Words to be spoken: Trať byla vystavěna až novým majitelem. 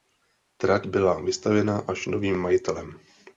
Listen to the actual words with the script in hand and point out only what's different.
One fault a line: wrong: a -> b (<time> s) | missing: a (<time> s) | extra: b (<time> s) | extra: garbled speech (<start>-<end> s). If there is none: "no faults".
no faults